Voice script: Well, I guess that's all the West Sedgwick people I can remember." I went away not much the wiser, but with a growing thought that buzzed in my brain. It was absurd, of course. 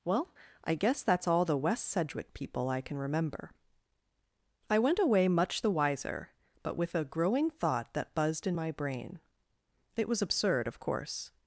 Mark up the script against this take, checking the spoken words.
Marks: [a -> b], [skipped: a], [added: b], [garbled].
Well, I guess that's all the West Sedgwick people I can remember." I went away [skipped: not] much the wiser, but with a growing thought that buzzed in my brain. It was absurd, of course.